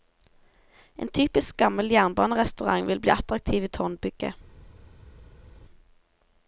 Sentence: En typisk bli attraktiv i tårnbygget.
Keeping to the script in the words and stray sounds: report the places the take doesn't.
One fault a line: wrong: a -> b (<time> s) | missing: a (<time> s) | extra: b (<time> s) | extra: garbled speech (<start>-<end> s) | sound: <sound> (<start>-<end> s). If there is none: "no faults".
extra: gammel jernbanerestaurant vil (1.6 s)